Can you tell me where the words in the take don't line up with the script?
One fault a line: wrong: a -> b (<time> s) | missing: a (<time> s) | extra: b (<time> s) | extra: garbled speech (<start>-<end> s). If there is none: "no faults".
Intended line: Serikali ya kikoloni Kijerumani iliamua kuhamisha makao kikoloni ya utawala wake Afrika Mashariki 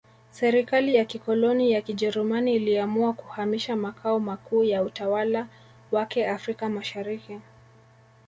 extra: ya (1.7 s)
wrong: kikoloni -> makuu (4.2 s)